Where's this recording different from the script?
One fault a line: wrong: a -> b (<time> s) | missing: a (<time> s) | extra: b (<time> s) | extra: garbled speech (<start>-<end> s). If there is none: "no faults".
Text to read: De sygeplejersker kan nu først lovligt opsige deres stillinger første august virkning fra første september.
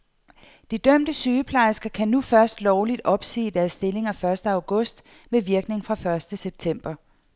extra: dømte (0.8 s)
extra: med (5.3 s)